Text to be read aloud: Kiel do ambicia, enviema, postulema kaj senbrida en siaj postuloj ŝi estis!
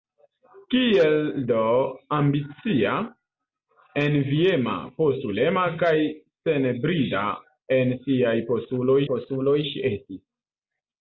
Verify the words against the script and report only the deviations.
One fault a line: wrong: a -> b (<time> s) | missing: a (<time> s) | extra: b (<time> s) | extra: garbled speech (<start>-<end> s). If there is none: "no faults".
extra: postuloj (9.1 s)